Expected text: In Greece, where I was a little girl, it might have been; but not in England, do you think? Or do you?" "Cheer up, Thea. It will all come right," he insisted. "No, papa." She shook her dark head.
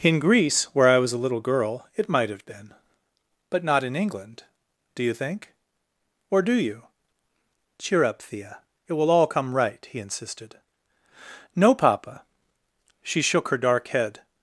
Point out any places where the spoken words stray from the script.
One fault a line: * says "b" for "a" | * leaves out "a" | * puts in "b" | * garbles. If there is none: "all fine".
all fine